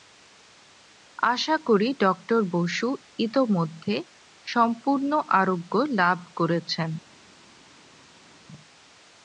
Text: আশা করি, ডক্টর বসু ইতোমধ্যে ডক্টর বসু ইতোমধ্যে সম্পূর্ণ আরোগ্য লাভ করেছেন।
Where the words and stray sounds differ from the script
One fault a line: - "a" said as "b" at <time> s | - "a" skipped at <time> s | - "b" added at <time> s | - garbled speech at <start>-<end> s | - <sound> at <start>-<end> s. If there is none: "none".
- "ডক্টর বসু ইতোমধ্যে" skipped at 3.9 s